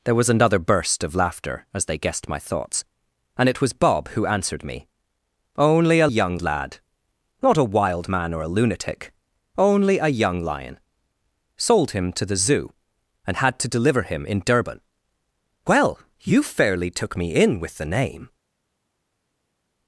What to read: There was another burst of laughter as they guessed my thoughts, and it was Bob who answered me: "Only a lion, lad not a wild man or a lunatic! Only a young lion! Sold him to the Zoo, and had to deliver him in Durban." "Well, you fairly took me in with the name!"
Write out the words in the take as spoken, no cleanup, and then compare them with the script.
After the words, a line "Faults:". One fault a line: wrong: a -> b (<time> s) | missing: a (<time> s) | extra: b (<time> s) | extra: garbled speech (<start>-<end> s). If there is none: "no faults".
There was another burst of laughter as they guessed my thoughts, and it was Bob who answered me: "Only a young, lad not a wild man or a lunatic! Only a young lion! Sold him to the Zoo, and had to deliver him in Durban." "Well, you fairly took me in with the name!"
Faults:
wrong: lion -> young (6.1 s)